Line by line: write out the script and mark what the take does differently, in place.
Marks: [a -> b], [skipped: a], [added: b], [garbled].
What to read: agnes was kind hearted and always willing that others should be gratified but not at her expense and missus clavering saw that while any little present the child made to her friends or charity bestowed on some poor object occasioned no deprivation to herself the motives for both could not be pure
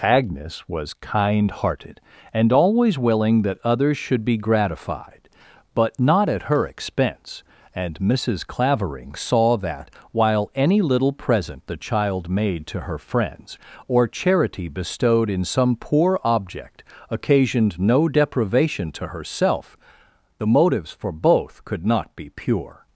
agnes was kind hearted and always willing that others should be gratified but not at her expense and missus clavering saw that while any little present the child made to her friends or charity bestowed [on -> in] some poor object occasioned no deprivation to herself the motives for both could not be pure